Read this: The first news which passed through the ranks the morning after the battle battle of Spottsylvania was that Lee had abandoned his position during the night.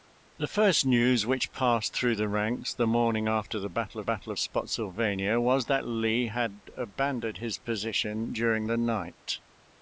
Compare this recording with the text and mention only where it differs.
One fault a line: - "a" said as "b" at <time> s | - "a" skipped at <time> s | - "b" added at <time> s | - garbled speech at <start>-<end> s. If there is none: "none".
none